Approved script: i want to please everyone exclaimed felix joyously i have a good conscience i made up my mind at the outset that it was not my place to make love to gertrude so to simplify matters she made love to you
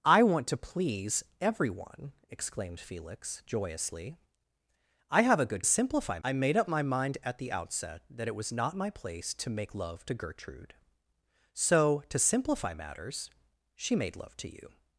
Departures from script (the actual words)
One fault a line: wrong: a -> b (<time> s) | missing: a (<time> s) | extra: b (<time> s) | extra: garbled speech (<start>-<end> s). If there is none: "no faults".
wrong: conscience -> simplify (5.6 s)